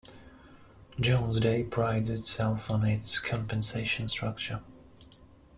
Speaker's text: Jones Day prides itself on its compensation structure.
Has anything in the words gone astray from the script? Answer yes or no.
no